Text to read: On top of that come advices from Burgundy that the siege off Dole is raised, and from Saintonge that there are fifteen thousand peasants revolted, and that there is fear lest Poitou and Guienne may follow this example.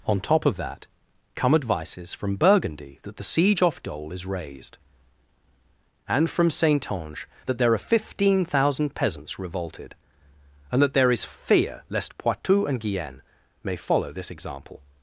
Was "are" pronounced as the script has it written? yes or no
yes